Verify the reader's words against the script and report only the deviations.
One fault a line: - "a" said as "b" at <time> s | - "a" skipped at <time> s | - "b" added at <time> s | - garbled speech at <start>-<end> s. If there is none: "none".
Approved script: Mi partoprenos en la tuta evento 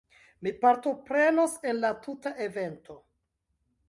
none